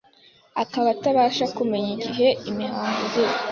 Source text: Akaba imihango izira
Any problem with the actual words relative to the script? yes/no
yes